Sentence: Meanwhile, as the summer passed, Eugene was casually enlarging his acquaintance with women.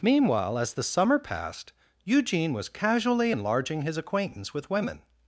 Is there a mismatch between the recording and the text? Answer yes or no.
no